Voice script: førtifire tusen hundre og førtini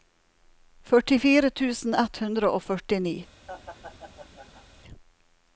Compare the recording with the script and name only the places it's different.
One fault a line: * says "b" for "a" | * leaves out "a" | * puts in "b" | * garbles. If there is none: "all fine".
* puts in "ett"